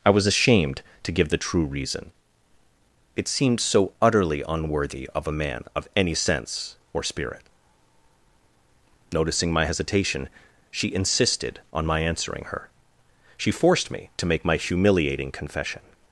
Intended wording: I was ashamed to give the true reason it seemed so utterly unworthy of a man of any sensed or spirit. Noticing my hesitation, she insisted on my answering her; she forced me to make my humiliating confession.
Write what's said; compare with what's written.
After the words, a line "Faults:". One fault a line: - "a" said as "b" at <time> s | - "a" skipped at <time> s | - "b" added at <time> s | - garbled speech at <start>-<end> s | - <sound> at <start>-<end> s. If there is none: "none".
I was ashamed to give the true reason it seemed so utterly unworthy of a man of any sense or spirit. Noticing my hesitation, she insisted on my answering her; she forced me to make my humiliating confession.
Faults:
- "sensed" said as "sense" at 6.1 s